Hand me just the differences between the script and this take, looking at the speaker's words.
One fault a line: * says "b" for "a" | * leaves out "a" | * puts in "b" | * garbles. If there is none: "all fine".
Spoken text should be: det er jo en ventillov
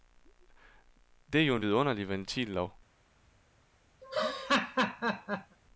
* puts in "vidunderlig"